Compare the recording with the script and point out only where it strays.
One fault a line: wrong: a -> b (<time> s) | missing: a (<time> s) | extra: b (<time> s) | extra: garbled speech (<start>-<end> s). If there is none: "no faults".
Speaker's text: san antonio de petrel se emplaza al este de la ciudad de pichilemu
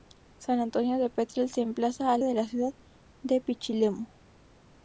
missing: este (2.2 s)